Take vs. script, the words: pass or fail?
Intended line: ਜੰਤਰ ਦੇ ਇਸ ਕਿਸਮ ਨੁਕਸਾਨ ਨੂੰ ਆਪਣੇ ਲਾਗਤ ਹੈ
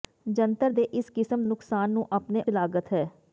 pass